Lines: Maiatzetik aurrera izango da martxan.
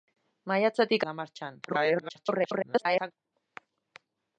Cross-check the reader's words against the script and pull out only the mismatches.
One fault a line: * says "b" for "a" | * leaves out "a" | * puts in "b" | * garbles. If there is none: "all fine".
* leaves out "aurrera izango"
* garbles